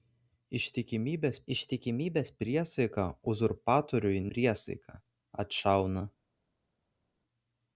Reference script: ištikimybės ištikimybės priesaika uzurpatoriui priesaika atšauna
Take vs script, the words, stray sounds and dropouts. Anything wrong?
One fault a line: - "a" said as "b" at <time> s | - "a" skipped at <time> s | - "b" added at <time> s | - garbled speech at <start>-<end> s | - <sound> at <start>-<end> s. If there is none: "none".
none